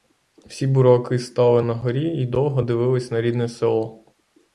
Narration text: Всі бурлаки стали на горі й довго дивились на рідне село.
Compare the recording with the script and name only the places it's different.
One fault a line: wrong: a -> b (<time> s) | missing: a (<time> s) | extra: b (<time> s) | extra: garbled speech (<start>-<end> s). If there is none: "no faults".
no faults